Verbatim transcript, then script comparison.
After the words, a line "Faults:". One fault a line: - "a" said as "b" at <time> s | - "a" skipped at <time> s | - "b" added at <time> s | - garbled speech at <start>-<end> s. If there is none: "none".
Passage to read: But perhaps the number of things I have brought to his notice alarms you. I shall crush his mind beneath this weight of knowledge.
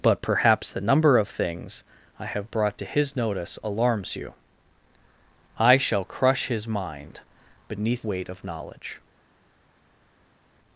But perhaps the number of things I have brought to his notice alarms you. I shall crush his mind beneath weight of knowledge.
Faults:
- "this" skipped at 8.1 s